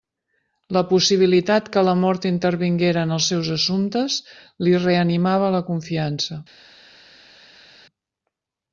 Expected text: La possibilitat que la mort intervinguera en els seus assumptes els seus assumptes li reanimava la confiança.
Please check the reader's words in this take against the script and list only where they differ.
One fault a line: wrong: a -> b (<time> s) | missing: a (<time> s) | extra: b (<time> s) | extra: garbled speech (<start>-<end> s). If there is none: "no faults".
missing: els seus assumptes (4.2 s)